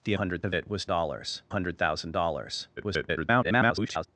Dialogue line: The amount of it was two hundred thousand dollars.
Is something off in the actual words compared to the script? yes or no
yes